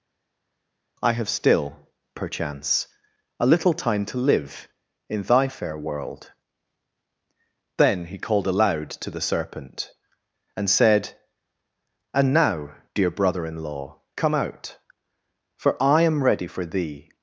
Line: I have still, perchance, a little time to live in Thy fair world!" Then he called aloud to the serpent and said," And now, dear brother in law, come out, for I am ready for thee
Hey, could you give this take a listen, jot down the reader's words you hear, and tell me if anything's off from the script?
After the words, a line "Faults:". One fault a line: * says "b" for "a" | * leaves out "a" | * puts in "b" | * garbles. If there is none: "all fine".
I have still, perchance, a little time to live in Thy fair world!" Then he called aloud to the serpent and said," And now, dear brother in law, come out, for I am ready for thee
Faults:
all fine